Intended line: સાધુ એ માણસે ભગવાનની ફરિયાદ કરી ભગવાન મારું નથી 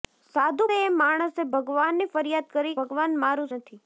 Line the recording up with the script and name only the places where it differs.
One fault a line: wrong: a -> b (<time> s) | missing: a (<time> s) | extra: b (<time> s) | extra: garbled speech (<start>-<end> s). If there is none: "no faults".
no faults